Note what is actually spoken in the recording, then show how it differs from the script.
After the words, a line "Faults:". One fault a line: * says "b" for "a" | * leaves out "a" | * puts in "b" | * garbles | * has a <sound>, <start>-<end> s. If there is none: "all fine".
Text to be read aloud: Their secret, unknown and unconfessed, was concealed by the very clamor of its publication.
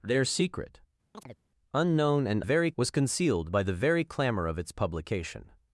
Their secret, unknown and very, was concealed by the very clamor of its publication.
Faults:
* has a chirp, 1.1-1.4 s
* says "very" for "unconfessed"